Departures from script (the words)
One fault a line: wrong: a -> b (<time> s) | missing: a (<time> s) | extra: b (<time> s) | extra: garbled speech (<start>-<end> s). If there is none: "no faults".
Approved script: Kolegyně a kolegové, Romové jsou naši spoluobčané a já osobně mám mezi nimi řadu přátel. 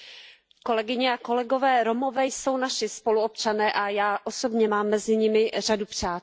no faults